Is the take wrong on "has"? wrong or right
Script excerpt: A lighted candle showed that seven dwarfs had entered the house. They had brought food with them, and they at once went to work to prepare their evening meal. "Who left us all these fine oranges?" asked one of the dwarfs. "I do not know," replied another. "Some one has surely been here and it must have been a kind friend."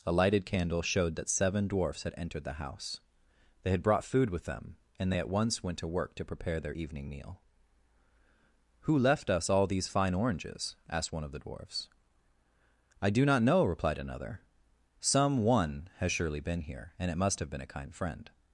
right